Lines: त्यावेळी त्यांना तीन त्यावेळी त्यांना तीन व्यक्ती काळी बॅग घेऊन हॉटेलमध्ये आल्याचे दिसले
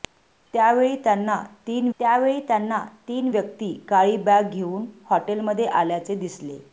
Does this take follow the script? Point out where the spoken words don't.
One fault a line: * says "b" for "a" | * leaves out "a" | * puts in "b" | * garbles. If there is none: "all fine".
all fine